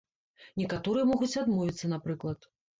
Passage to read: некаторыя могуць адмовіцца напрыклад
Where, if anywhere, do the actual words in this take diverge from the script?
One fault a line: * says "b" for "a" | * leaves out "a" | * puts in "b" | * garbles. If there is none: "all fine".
all fine